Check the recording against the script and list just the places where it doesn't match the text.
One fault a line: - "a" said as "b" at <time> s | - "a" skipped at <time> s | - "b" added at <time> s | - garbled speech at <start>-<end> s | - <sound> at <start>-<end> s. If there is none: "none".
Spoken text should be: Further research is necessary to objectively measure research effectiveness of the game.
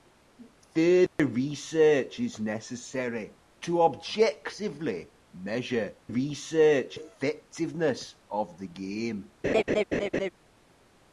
- dropout at 1.1-1.2 s
- laugh at 9.4-10.3 s